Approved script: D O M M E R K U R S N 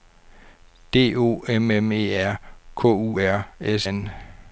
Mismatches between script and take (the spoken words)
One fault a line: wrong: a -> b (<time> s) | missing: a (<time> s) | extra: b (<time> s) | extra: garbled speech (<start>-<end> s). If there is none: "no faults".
no faults